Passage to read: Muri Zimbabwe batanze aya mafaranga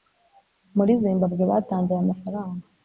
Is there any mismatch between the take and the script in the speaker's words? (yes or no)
no